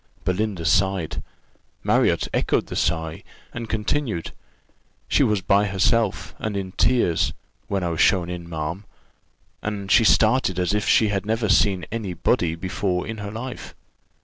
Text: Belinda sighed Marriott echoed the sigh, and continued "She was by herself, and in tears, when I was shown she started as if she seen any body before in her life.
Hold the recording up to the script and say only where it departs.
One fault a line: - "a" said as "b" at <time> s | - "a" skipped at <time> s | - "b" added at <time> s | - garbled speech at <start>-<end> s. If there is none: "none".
- "in ma'am and" added at 8.3 s
- "had never" added at 11.1 s